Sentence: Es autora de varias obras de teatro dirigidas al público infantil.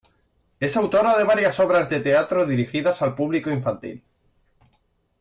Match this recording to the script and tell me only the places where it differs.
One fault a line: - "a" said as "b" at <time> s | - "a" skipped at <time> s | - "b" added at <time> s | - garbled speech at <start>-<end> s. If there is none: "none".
none